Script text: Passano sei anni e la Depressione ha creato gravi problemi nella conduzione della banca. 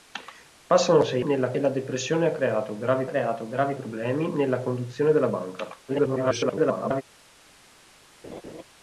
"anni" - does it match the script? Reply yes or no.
no